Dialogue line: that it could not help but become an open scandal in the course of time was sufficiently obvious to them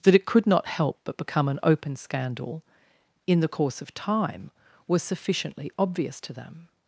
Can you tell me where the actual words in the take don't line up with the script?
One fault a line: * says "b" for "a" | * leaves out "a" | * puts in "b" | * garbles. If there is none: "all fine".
all fine